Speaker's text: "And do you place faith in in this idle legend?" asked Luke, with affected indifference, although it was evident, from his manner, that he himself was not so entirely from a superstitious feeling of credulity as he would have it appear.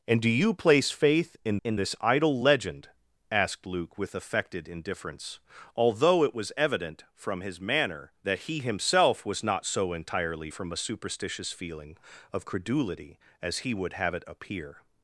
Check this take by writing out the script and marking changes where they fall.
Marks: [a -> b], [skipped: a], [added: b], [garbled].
"And do you place faith in in this idle legend?" asked Luke, with affected indifference, although it was evident, from his manner, that he himself was not so entirely from a superstitious feeling of credulity as he would have it appear.